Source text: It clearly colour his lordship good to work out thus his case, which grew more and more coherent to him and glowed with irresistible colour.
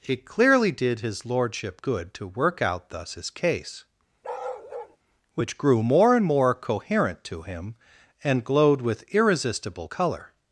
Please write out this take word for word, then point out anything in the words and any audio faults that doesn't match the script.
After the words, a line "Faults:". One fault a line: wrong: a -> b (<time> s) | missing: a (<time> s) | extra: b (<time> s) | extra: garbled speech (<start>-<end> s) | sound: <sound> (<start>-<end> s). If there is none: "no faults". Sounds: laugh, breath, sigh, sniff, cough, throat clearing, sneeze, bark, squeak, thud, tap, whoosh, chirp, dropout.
It clearly did his lordship good to work out thus his case, which grew more and more coherent to him and glowed with irresistible colour.
Faults:
wrong: colour -> did (0.7 s)
sound: bark (4.2-5.0 s)